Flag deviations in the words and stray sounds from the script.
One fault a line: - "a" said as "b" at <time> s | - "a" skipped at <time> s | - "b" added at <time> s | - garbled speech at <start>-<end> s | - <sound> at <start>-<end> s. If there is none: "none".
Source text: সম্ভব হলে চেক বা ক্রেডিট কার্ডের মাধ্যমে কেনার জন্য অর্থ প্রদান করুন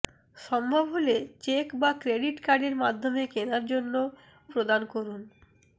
- "অর্থ" skipped at 3.9 s